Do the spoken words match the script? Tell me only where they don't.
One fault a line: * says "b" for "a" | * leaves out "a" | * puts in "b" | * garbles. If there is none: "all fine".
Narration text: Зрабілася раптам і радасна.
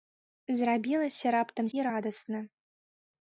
all fine